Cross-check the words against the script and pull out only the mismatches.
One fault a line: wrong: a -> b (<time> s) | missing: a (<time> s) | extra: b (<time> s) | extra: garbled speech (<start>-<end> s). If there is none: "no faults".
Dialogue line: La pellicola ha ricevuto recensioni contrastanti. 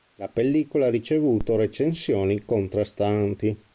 no faults